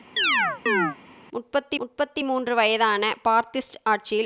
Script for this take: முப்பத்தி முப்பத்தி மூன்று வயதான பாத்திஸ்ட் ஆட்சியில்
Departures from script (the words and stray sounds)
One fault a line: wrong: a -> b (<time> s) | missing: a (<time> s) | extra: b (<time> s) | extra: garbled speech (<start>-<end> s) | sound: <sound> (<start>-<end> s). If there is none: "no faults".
sound: chirp (0.2-1.0 s)